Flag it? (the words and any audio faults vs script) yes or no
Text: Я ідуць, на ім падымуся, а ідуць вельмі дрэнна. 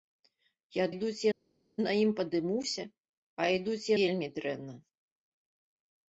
no